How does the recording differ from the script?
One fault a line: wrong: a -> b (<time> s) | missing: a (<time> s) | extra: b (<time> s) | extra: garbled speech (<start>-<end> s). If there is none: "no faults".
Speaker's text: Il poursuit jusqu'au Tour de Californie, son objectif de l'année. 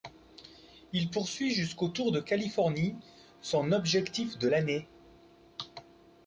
no faults